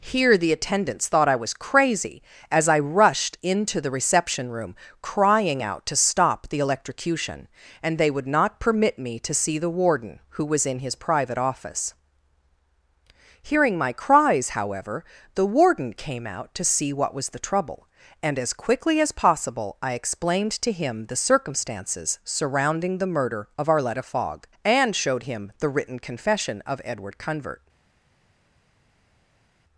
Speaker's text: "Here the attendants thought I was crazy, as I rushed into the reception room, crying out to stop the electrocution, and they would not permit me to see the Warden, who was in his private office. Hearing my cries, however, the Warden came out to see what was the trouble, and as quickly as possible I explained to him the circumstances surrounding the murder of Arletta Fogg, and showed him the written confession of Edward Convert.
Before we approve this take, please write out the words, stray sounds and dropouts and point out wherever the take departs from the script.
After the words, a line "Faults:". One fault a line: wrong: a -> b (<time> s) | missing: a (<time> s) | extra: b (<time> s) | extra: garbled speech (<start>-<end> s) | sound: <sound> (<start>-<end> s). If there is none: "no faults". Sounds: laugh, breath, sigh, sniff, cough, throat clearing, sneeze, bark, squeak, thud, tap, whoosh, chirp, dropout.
"Here the attendants thought I was crazy, as I rushed into the reception room, crying out to stop the electrocution, and they would not permit me to see the Warden, who was in his private office. Hearing my cries, however, the Warden came out to see what was the trouble, and as quickly as possible I explained to him the circumstances surrounding the murder of Arletta Fogg, and showed him the written confession of Edward Convert.
Faults:
no faults